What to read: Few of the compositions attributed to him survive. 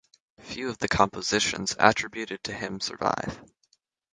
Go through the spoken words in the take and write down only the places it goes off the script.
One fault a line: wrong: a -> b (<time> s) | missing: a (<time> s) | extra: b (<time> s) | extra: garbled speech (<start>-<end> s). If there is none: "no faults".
no faults